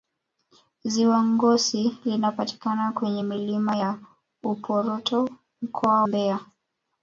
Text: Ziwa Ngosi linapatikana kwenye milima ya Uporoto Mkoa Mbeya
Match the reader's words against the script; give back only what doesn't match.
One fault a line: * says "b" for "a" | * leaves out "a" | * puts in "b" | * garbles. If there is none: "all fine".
all fine